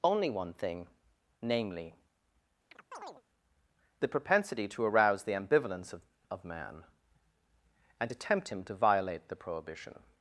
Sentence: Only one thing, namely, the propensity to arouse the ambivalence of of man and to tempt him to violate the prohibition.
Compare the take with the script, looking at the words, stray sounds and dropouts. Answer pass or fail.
fail